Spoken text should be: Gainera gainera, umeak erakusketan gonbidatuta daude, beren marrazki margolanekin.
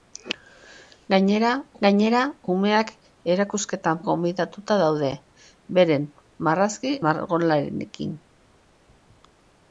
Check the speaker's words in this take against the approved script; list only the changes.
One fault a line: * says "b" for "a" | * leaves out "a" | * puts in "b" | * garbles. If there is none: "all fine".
all fine